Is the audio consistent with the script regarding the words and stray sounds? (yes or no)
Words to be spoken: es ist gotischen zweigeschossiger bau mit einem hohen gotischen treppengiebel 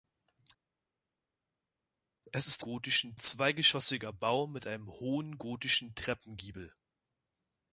yes